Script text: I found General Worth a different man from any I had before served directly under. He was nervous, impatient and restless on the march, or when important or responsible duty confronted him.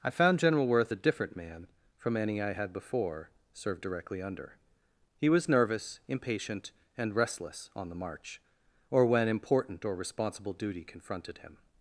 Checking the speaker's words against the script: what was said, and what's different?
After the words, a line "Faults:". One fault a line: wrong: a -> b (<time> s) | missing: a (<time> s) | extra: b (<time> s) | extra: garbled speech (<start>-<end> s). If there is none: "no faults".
I found General Worth a different man from any I had before served directly under. He was nervous, impatient and restless on the march, or when important or responsible duty confronted him.
Faults:
no faults